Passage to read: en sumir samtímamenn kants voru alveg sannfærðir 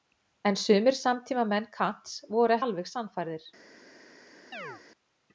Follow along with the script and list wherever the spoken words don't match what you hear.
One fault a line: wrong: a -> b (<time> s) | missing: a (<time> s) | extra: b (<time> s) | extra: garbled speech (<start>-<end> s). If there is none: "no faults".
no faults